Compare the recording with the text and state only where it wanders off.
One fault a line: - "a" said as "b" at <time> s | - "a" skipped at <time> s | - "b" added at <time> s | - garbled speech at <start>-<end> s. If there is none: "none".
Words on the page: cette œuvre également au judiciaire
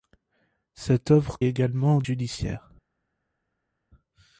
none